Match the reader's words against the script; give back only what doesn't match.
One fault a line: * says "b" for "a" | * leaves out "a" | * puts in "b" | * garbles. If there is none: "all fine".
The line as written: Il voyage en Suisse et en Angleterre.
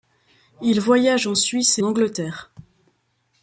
* leaves out "en"